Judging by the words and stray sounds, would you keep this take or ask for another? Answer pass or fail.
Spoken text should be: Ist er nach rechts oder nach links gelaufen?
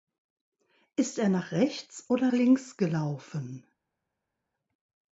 fail